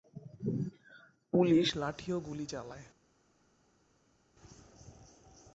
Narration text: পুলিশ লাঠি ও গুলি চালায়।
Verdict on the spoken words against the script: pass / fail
pass